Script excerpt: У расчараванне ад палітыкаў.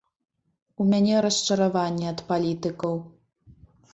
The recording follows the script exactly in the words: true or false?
false